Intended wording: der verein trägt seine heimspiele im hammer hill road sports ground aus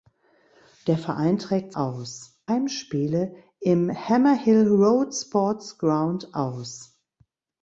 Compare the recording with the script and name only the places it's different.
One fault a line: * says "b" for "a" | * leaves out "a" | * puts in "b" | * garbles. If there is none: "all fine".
* says "aus" for "seine"